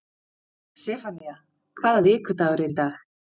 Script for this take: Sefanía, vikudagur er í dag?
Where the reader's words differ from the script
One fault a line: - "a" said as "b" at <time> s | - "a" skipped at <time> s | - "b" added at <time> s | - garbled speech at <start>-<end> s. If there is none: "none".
- "hvaða" added at 1.8 s